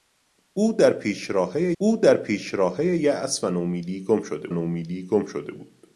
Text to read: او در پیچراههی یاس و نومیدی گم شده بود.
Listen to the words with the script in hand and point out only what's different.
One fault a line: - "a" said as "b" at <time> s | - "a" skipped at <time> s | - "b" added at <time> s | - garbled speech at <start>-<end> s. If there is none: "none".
- "او در پیچراههی" added at 1.8 s
- "نومیدی گم شده" added at 4.5 s